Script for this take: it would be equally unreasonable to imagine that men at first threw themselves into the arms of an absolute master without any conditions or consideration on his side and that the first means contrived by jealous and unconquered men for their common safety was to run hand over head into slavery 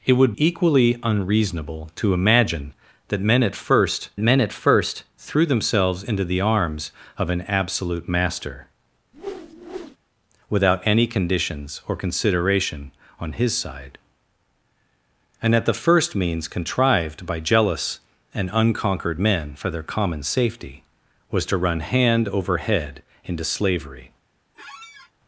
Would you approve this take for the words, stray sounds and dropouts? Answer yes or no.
no